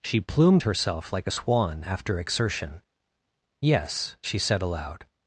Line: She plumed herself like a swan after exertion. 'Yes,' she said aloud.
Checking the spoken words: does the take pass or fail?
pass